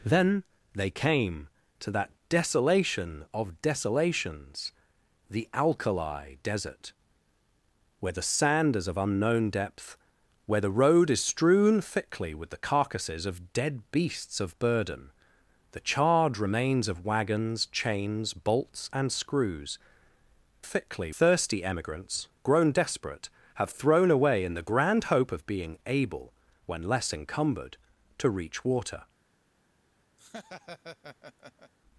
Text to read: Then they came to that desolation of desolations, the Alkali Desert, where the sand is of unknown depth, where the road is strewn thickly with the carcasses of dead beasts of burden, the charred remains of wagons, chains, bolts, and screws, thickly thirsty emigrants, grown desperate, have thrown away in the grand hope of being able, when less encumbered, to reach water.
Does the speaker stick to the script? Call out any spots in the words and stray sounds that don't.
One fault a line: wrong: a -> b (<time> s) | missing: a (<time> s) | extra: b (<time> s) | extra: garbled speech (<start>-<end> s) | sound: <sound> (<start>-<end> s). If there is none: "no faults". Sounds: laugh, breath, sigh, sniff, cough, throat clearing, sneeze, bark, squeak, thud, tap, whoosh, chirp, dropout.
sound: laugh (30.2-31.7 s)